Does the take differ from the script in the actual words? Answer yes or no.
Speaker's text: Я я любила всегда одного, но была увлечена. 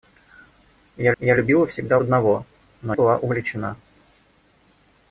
no